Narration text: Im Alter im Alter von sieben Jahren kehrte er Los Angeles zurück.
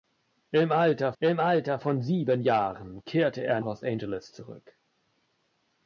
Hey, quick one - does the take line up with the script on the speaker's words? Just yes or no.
yes